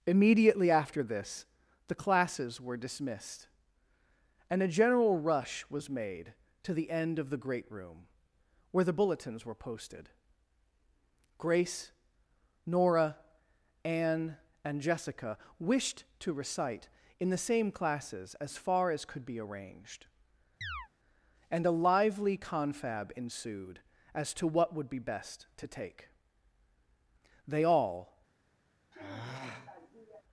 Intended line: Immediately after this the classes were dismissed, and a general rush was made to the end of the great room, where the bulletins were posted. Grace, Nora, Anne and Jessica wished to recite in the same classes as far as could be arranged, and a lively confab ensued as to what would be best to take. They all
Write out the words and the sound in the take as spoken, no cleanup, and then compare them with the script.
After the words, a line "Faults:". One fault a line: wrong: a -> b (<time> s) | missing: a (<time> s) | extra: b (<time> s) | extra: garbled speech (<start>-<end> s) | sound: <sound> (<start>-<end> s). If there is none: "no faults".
Immediately after this the classes were dismissed, and a general rush was made to the end of the great room, where the bulletins were posted. Grace, Nora, Anne and Jessica wished to recite in the same classes as far as could be arranged, and a lively confab ensued as to what would be best to take. They all
Faults:
sound: chirp (20.6-20.9 s)
sound: sigh (28.9-30.2 s)